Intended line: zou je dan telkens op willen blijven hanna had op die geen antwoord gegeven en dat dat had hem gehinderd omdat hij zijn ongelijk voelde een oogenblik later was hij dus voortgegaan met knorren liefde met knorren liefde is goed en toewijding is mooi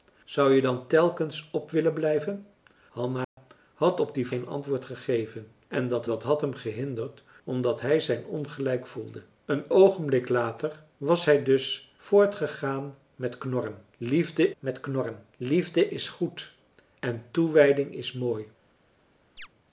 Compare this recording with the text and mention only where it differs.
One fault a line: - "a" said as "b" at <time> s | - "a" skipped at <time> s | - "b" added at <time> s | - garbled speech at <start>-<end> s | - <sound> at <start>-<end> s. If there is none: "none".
- dropout at 3.2-3.4 s
- chirp at 19.4-19.5 s